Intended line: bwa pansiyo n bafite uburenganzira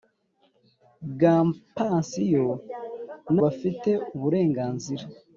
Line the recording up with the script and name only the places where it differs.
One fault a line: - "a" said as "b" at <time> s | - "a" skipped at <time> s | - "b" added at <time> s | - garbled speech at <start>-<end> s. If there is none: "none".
none